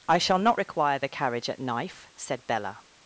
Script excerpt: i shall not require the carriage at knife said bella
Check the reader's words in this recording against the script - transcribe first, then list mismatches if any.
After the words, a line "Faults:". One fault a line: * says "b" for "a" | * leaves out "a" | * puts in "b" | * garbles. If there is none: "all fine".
i shall not require the carriage at knife said bella
Faults:
all fine